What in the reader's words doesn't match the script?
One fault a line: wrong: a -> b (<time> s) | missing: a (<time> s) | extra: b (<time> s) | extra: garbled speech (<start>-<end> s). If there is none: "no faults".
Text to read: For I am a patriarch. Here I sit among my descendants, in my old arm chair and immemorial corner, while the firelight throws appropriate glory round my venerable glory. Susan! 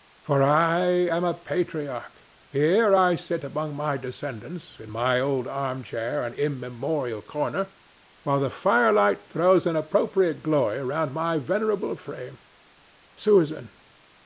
extra: an (9.7 s)
wrong: glory -> frame (12.0 s)